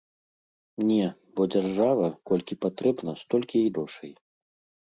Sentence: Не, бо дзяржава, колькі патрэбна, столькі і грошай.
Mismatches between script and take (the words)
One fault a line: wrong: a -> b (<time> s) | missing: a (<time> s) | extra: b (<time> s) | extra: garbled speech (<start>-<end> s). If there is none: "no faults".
no faults